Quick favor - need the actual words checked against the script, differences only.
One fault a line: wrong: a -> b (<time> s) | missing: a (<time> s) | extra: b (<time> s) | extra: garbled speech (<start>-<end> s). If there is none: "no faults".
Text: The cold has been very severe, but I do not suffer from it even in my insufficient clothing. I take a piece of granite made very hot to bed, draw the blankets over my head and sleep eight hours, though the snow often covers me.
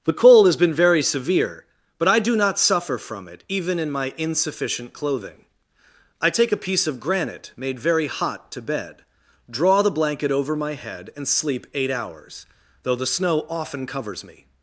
wrong: blankets -> blanket (9.9 s)